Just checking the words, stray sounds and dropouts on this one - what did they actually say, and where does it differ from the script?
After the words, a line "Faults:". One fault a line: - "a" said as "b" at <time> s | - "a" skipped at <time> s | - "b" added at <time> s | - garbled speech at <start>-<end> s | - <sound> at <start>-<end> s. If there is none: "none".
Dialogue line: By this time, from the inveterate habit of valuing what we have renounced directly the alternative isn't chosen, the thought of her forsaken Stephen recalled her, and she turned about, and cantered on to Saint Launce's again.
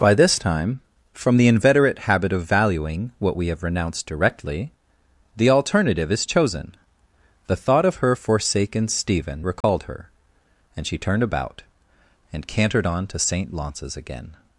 By this time, from the inveterate habit of valuing what we have renounced directly the alternative is chosen, the thought of her forsaken Stephen recalled her, and she turned about, and cantered on to Saint Launce's again.
Faults:
- "isn't" said as "is" at 6.1 s
- dropout at 9.6-9.6 s